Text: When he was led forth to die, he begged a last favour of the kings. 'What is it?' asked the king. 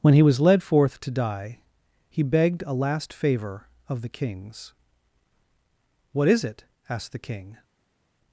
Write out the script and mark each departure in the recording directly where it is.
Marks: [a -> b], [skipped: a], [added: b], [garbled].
When he was led forth to die, he begged a last favour of the kings. 'What is it?' asked the king.